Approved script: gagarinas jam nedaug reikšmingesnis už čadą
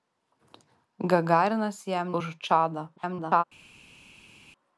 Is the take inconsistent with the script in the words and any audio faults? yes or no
yes